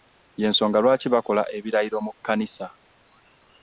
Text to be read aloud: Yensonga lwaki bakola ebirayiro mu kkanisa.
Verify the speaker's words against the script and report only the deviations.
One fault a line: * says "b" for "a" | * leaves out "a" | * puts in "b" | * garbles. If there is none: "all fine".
all fine